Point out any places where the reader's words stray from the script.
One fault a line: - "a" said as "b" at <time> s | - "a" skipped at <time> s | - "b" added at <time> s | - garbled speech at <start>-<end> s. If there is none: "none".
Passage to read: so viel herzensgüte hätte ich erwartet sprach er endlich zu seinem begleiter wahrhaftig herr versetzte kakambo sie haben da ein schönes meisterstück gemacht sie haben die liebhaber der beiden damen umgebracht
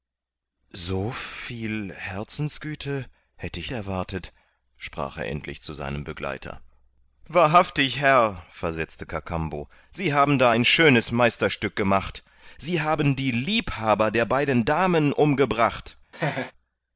none